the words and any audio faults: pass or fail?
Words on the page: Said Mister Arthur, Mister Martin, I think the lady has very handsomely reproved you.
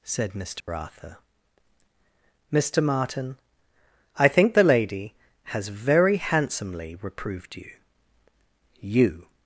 fail